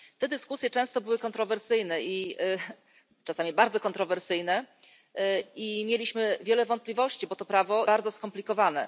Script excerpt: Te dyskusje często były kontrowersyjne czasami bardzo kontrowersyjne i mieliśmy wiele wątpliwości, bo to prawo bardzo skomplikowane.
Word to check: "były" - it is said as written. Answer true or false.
true